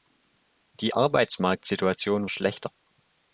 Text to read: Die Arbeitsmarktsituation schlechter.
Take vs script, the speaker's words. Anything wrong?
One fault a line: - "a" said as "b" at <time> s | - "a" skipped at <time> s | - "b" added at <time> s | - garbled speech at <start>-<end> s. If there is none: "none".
none